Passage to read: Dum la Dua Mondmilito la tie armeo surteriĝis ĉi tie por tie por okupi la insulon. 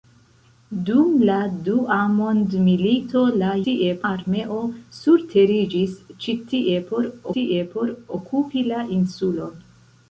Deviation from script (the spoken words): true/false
false